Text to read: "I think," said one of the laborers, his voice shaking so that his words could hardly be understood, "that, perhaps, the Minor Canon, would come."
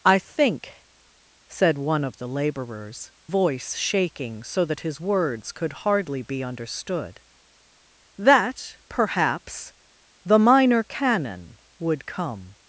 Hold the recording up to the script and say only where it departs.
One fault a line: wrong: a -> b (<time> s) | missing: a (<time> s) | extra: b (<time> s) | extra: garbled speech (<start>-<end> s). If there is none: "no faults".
missing: his (3.1 s)